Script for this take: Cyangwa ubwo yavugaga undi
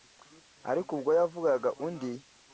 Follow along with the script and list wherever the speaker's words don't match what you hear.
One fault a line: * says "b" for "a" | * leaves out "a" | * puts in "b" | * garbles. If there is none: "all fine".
* says "Ariko" for "Cyangwa"